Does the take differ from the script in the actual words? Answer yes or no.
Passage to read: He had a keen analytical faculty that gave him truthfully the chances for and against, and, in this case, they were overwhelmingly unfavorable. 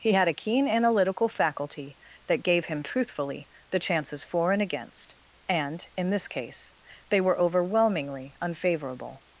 no